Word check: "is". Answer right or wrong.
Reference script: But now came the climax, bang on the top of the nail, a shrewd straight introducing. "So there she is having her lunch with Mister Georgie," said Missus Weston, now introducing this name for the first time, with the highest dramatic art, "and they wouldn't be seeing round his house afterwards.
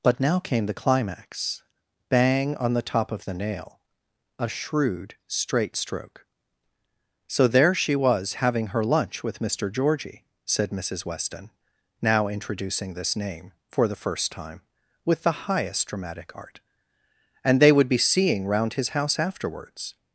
wrong